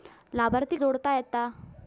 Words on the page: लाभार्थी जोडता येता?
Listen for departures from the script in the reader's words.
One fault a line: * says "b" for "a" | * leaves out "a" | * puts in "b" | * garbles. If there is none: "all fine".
all fine